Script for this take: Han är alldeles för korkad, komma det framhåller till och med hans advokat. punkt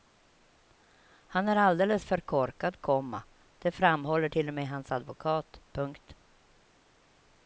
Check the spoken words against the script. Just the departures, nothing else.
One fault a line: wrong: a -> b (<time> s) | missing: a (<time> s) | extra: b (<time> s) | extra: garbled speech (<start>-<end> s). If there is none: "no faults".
no faults